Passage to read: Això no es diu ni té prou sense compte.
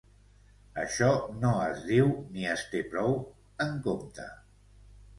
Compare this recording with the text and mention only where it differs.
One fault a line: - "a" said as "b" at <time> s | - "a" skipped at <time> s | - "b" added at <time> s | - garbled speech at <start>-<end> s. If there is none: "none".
- "es" added at 2.6 s
- "sense" said as "en" at 3.7 s